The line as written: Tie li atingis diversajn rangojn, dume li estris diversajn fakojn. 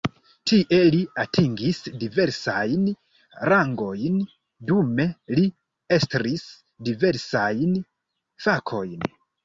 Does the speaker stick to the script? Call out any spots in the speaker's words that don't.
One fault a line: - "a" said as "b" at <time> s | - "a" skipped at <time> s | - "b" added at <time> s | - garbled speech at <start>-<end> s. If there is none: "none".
none